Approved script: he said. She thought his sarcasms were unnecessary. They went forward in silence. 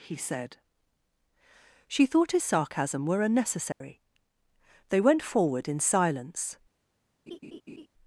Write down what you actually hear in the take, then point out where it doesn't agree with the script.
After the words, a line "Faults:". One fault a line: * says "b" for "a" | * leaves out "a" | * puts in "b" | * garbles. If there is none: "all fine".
he said. She thought his sarcasm were unnecessary. They went forward in silence.
Faults:
* says "sarcasm" for "sarcasms"